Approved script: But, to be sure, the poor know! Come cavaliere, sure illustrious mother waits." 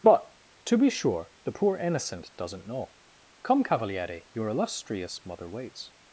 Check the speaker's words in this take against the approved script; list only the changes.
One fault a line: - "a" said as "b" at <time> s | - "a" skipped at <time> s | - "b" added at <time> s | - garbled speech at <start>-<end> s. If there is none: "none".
- "innocent doesn't" added at 1.8 s
- "sure" said as "your" at 4.3 s